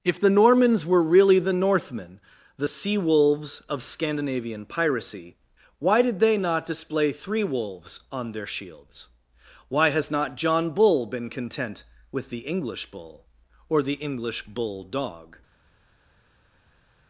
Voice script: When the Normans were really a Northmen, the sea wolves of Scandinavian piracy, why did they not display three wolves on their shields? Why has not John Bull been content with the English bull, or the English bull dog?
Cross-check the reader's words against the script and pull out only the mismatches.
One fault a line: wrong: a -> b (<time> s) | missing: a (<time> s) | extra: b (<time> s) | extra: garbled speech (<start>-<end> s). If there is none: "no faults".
wrong: When -> If (0.0 s)
wrong: a -> the (1.4 s)